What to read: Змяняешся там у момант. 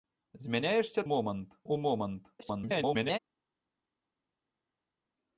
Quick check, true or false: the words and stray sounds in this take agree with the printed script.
false